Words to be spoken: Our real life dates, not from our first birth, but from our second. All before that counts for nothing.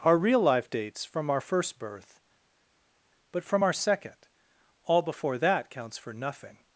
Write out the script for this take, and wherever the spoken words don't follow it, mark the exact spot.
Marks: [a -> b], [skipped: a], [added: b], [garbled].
Our real life dates, [skipped: not] from our first birth, but from our second. All before that counts for nothing.